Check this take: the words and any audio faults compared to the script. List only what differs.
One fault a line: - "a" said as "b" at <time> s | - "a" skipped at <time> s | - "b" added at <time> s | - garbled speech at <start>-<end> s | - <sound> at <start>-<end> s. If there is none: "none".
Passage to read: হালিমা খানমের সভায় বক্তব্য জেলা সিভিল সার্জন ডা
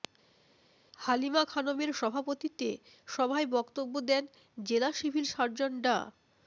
- "সভাপতিত্বে" added at 1.9 s
- "দেন" added at 4.1 s